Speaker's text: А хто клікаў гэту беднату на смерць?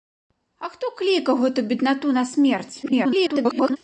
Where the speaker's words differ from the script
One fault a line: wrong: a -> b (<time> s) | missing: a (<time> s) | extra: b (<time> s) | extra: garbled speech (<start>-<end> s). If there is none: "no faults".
extra: garbled speech (2.8-3.8 s)